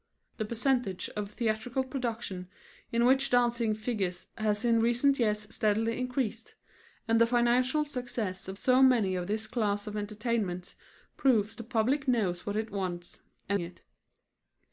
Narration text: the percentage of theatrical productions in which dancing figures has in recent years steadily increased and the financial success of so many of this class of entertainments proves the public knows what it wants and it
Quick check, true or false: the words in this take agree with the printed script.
true